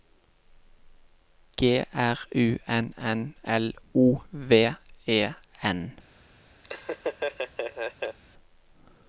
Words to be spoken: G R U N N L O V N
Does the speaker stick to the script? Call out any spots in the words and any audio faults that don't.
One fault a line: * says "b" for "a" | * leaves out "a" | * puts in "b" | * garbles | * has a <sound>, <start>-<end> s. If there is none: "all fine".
* puts in "E"
* has a laugh, 6.6-8.2 s